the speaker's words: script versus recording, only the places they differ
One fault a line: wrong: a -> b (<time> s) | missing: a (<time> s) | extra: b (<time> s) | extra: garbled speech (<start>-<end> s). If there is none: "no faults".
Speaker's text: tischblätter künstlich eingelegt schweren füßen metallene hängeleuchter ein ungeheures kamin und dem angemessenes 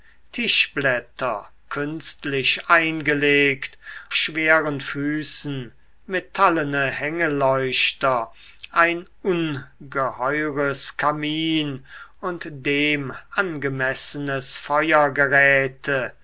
no faults